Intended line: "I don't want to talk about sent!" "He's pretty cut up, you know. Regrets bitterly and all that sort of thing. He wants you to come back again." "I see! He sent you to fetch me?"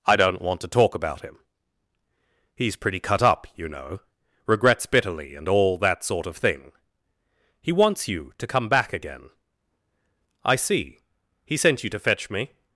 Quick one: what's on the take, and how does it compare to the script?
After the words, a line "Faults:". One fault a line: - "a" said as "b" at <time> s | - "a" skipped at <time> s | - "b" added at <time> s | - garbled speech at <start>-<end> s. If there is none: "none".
"I don't want to talk about him!" "He's pretty cut up, you know. Regrets bitterly and all that sort of thing. He wants you to come back again." "I see! He sent you to fetch me?"
Faults:
- "sent" said as "him" at 1.2 s